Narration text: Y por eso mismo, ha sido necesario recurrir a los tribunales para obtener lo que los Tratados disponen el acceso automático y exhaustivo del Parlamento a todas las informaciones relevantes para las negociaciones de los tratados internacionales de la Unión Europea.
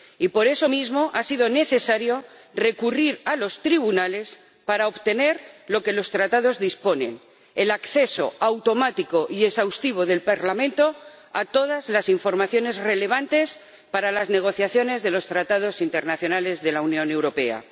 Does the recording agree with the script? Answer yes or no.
yes